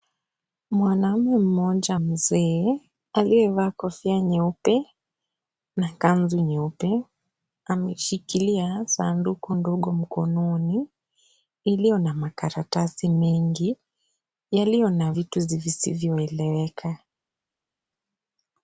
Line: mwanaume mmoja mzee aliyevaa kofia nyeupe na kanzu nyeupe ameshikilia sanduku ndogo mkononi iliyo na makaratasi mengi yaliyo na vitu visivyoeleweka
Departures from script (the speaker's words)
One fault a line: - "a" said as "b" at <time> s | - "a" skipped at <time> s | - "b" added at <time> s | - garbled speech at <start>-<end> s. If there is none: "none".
none